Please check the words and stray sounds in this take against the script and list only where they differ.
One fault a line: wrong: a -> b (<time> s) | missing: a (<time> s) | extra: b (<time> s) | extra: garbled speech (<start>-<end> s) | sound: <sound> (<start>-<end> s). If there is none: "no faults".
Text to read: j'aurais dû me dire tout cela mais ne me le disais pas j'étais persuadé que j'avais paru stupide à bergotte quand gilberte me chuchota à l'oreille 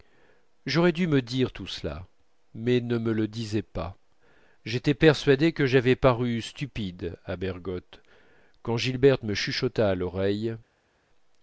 no faults